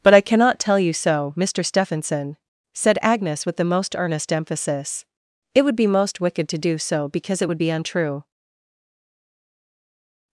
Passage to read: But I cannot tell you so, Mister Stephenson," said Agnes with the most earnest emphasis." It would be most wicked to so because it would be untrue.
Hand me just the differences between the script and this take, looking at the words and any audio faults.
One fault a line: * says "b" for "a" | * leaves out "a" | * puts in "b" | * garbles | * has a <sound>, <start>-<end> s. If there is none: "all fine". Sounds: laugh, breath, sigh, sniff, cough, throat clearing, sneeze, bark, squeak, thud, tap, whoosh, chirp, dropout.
* puts in "do"